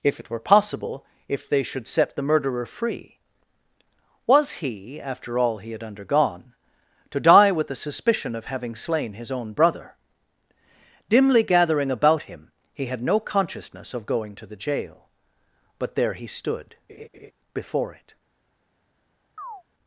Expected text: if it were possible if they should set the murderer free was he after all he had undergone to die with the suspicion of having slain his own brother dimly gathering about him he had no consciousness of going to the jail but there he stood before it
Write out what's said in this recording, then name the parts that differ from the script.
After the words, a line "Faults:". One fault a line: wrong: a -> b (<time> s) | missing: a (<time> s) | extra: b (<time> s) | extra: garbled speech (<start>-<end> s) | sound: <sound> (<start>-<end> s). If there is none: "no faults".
if it were possible if they should set the murderer free was he after all he had undergone to die with the suspicion of having slain his own brother dimly gathering about him he had no consciousness of going to the jail but there he stood before it
Faults:
sound: laugh (16.9-17.3 s)
sound: chirp (19.4-19.6 s)